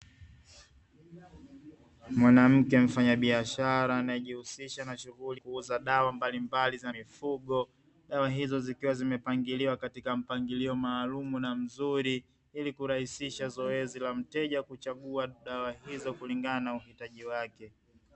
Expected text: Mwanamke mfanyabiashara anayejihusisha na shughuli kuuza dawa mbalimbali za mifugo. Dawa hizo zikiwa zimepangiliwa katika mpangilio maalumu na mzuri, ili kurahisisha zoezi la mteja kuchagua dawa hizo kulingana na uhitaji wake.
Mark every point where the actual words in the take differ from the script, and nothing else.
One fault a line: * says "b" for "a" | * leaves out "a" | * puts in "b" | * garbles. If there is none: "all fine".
all fine